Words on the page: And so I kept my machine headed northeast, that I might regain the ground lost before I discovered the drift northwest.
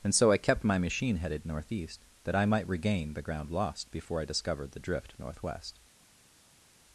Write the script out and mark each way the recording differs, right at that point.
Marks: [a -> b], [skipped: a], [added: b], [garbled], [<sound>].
And so I kept my machine headed northeast, that I might regain the ground lost before I discovered the drift northwest.